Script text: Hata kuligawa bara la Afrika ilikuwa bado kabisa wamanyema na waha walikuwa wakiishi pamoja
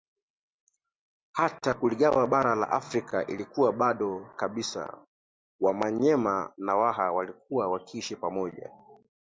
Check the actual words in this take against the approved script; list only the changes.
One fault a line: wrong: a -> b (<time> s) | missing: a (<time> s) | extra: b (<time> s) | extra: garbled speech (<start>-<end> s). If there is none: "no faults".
no faults